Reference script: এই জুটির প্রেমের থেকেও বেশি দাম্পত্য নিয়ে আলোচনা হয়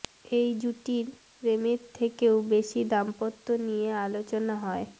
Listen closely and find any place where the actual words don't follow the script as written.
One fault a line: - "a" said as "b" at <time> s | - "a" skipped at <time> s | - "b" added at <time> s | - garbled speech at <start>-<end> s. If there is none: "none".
none